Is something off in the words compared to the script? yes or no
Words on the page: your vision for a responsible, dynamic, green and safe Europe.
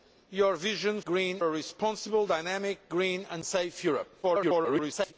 yes